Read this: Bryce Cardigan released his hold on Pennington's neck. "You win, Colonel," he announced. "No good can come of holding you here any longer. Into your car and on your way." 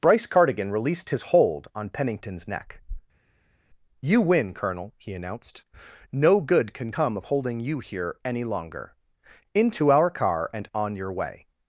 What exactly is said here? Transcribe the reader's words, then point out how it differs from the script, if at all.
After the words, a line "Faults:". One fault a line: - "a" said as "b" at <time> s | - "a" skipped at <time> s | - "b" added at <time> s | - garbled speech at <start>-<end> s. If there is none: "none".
Bryce Cardigan released his hold on Pennington's neck. "You win, Colonel," he announced. "No good can come of holding you here any longer. Into our car and on your way."
Faults:
- "your" said as "our" at 9.9 s